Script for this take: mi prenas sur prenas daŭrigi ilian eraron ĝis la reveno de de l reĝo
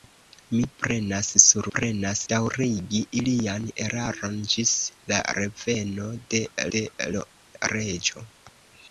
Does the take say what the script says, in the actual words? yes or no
yes